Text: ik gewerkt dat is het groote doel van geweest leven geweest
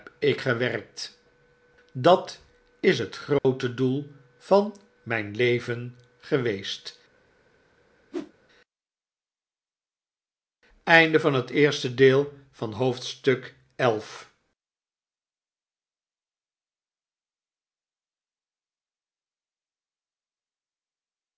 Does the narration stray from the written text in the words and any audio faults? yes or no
yes